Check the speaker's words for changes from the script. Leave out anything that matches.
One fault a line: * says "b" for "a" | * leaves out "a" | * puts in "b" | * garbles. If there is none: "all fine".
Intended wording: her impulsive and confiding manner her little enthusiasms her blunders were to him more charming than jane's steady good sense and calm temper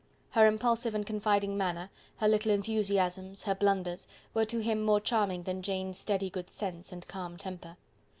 all fine